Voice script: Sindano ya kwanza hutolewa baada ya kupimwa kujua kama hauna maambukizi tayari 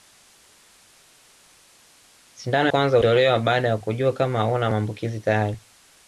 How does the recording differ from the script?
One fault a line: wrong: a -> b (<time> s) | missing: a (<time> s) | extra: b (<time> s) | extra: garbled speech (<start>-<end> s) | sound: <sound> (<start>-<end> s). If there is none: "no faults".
missing: ya (2.7 s)
missing: kupimwa (3.8 s)